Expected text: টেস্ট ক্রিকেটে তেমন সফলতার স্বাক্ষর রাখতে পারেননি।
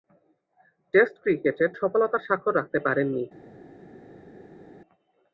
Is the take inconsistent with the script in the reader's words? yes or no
yes